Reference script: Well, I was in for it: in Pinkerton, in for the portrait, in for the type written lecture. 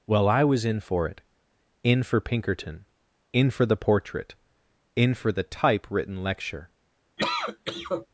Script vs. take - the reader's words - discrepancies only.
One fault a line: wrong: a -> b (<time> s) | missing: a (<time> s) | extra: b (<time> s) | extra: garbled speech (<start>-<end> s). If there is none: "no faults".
extra: for (2.0 s)